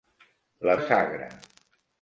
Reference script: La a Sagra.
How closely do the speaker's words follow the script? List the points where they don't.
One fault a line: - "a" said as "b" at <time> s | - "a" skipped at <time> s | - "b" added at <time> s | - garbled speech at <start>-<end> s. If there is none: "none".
none